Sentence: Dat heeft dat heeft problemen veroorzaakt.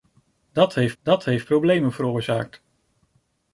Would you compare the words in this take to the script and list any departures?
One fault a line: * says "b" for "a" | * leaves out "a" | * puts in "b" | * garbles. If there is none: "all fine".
all fine